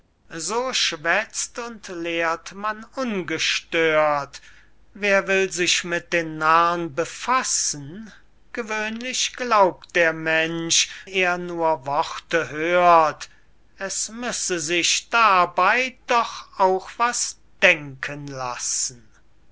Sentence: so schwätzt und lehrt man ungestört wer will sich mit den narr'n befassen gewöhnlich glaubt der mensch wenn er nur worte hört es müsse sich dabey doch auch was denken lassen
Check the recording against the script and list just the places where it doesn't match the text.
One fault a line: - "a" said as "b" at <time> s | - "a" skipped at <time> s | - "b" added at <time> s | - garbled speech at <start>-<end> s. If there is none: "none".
- "wenn" skipped at 10.9 s